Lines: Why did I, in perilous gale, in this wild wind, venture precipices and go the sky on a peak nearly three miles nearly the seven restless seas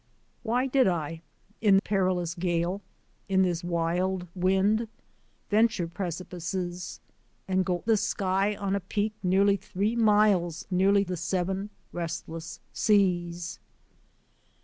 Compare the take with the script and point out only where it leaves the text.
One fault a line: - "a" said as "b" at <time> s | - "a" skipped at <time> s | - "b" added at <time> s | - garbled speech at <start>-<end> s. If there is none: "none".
none